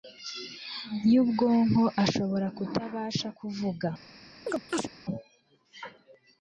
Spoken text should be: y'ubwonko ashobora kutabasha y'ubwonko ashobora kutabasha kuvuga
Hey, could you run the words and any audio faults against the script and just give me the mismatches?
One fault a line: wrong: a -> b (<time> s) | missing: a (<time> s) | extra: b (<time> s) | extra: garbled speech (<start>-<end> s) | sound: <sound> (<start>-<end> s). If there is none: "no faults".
missing: y'ubwonko ashobora kutabasha (3.3 s)
sound: chirp (4.5-4.9 s)